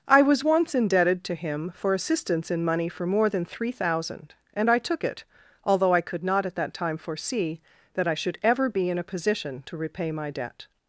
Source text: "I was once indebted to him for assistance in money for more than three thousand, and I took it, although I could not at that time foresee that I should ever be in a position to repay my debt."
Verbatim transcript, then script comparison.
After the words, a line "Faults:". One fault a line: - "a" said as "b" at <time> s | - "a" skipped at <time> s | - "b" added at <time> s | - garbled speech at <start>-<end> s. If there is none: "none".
"I was once indebted to him for assistance in money for more than three thousand, and I took it, although I could not at that time foresee that I should ever be in a position to repay my debt."
Faults:
none